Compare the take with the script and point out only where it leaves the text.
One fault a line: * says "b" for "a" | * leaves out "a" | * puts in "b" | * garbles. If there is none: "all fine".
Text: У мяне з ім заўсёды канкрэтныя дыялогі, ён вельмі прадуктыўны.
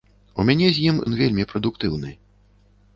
* leaves out "заўсёды канкрэтныя дыялогі"